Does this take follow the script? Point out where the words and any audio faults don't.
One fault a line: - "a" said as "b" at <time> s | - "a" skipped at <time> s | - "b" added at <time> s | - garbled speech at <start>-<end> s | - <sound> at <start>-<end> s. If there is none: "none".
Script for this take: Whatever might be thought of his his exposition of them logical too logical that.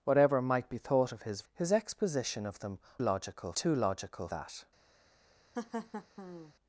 - laugh at 5.5-6.5 s